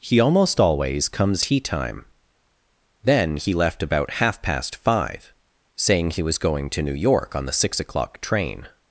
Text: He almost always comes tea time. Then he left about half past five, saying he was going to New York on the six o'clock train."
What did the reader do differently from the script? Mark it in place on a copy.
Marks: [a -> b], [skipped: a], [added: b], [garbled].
He almost always comes tea time. Then he left about half past five, saying he was going to New York on the six o'clock train."